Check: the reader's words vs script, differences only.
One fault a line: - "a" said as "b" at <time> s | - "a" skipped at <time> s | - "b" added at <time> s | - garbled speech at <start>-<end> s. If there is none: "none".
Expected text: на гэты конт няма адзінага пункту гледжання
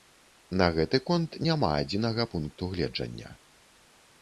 none